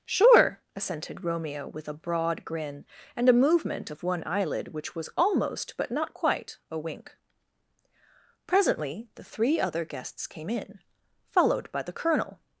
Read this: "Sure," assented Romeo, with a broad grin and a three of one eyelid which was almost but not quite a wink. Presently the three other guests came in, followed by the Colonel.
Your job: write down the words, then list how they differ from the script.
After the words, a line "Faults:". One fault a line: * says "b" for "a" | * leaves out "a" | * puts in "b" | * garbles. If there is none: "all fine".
"Sure," assented Romeo, with a broad grin and a movement of one eyelid which was almost but not quite a wink. Presently the three other guests came in, followed by the Colonel.
Faults:
* says "movement" for "three"